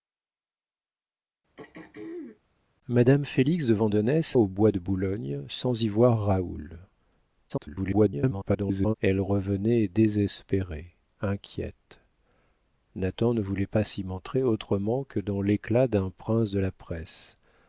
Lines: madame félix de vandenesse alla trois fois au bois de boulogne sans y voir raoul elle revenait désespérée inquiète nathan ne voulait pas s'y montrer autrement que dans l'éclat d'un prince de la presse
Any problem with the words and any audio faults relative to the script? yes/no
yes